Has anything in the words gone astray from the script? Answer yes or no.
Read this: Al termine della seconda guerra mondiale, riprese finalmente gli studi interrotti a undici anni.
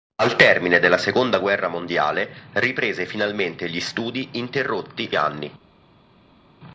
yes